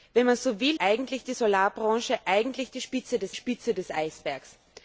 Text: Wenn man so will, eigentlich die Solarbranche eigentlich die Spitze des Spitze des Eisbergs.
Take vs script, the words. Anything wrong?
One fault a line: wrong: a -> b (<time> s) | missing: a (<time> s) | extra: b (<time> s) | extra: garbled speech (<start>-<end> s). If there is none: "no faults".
no faults